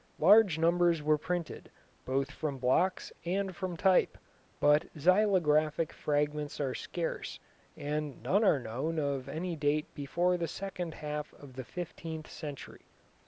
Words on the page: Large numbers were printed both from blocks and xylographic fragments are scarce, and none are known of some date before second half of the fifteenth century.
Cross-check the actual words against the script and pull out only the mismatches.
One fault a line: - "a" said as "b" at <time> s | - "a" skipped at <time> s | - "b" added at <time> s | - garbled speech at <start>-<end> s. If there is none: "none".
- "from type but" added at 3.5 s
- "some" said as "any" at 9.3 s
- "the" added at 10.4 s